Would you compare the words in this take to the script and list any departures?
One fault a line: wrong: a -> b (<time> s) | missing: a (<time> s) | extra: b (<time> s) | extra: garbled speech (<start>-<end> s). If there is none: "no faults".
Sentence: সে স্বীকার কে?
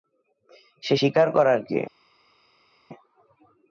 extra: করার (1.3 s)